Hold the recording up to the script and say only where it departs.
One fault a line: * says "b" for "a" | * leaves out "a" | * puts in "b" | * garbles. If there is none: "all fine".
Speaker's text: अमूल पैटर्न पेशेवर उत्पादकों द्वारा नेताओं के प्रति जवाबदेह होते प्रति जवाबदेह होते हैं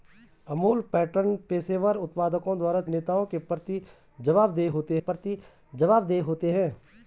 all fine